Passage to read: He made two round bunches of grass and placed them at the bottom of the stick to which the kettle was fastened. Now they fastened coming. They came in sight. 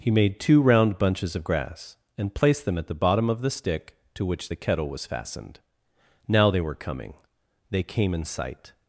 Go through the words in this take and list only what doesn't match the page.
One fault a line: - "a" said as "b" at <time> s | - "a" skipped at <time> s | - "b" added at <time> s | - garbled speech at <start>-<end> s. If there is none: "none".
- "fastened" said as "were" at 6.6 s